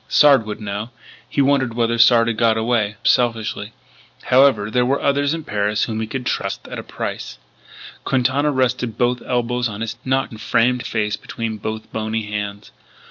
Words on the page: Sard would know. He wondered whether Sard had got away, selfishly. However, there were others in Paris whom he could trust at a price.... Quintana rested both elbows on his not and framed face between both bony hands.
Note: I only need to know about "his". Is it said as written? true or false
true